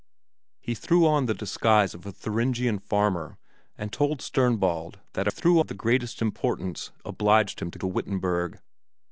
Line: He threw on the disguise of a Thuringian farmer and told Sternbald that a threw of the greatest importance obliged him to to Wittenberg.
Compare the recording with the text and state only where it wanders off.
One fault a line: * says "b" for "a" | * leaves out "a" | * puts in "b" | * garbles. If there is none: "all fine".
all fine